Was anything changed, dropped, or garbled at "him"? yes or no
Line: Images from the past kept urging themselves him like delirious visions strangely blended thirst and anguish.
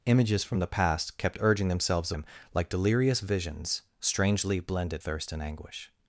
no